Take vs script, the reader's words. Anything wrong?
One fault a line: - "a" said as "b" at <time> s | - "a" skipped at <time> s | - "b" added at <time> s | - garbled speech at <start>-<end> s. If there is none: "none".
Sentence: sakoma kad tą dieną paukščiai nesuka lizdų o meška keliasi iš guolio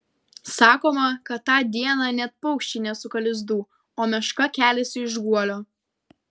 - "net" added at 2.2 s